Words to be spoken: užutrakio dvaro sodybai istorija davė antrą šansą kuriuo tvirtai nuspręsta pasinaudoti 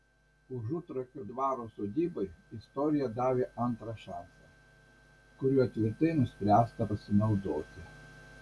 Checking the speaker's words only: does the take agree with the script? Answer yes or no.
yes